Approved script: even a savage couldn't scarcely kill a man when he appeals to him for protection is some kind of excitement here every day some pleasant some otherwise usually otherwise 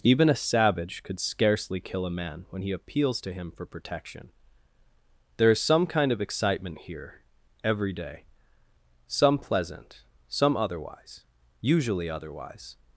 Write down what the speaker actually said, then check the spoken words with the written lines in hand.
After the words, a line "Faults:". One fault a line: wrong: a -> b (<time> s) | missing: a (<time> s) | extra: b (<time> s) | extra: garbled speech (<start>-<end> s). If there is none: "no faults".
even a savage could scarcely kill a man when he appeals to him for protection there is some kind of excitement here every day some pleasant some otherwise usually otherwise
Faults:
wrong: couldn't -> could (1.0 s)
extra: there (5.4 s)